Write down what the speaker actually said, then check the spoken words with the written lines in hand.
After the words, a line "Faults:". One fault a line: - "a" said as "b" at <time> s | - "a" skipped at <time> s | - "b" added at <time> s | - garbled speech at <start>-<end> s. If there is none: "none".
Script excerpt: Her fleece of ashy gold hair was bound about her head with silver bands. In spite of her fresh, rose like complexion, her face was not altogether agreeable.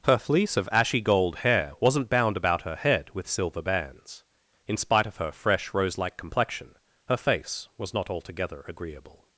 Her fleece of ashy gold hair wasn't bound about her head with silver bands. In spite of her fresh, rose like complexion, her face was not altogether agreeable.
Faults:
- "was" said as "wasn't" at 1.8 s